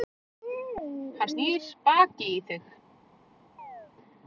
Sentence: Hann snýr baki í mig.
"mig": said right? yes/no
no